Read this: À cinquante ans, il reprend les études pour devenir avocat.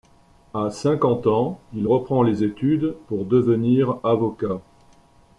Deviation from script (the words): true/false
false